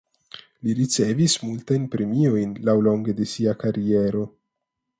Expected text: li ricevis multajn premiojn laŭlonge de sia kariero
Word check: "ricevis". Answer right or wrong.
right